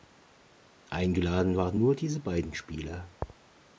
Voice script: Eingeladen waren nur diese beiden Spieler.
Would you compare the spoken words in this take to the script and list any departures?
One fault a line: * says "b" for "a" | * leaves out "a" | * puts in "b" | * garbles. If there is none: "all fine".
all fine